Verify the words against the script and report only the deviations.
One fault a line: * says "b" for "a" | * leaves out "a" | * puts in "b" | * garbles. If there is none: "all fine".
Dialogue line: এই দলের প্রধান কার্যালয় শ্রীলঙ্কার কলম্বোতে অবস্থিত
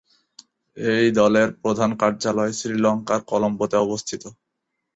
all fine